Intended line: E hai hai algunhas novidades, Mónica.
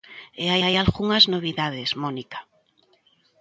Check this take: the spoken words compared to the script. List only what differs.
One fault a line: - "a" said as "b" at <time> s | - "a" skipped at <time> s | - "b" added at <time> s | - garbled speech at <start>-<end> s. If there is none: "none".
none